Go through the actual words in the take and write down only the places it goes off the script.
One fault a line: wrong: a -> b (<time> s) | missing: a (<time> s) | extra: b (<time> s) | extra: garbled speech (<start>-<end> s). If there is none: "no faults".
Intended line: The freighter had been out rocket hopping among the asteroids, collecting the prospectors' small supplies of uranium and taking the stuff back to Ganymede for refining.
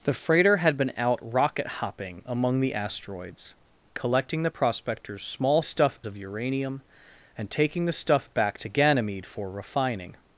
wrong: supplies -> stuff (5.6 s)